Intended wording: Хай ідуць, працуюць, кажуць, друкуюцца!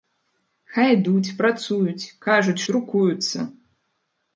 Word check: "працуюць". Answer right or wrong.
right